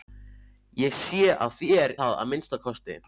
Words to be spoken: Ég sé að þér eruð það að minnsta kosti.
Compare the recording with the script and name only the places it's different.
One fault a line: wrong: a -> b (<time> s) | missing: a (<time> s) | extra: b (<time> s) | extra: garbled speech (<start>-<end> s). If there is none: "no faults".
missing: eruð (1.9 s)